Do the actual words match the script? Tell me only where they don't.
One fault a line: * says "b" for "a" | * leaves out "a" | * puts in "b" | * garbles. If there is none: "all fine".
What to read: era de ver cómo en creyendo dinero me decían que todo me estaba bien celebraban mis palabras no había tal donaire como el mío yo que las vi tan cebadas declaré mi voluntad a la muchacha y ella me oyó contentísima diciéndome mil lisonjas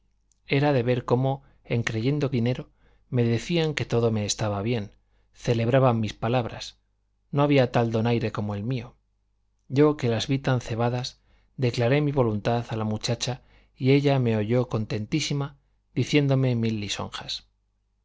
all fine